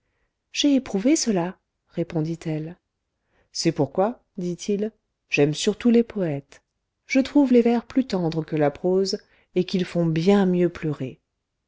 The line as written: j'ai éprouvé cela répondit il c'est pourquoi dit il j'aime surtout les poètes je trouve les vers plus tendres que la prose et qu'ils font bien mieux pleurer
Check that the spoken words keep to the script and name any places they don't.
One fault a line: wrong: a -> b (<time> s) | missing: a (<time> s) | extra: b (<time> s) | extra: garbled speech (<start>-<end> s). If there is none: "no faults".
wrong: il -> elle (2.5 s)